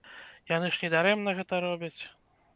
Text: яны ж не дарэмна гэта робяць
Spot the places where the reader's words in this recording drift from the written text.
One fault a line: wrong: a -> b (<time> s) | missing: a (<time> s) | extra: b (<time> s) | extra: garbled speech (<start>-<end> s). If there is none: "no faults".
no faults